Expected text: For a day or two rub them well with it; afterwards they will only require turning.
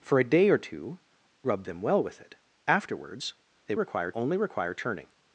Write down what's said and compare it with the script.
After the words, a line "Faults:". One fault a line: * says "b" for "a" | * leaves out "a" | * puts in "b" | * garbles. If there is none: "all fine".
For a day or two rub them well with it; afterwards they require only require turning.
Faults:
* says "require" for "will"